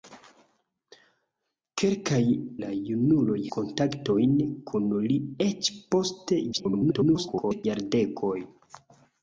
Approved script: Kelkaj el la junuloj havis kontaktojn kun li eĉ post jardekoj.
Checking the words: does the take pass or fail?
fail